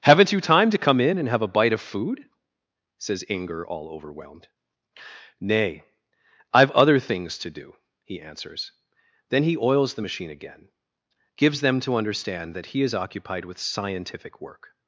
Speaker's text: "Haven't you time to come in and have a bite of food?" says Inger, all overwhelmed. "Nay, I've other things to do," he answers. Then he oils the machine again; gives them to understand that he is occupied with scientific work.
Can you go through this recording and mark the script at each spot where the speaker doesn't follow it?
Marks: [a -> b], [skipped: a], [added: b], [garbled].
"Haven't you time to come in and have a bite of food?" says Inger, all overwhelmed. "Nay, I've other things to do," he answers. Then he oils the machine again; gives them to understand that he is occupied with scientific work.